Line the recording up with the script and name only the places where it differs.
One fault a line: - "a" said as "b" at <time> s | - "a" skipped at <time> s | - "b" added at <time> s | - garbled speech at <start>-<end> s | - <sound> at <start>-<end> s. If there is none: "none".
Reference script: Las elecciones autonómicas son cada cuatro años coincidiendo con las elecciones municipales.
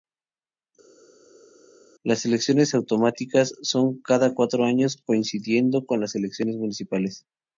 none